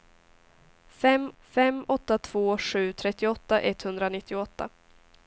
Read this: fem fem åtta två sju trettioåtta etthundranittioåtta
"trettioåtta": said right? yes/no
yes